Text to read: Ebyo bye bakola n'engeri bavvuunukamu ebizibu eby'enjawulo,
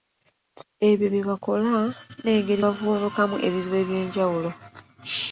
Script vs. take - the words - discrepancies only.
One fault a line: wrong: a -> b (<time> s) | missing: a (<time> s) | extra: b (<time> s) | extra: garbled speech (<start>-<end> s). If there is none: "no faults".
no faults